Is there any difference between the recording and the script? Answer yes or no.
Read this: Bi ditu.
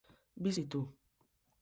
no